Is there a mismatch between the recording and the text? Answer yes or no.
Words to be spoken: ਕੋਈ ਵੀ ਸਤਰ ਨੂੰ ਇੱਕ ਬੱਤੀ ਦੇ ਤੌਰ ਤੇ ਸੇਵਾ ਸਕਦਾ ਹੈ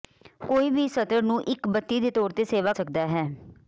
no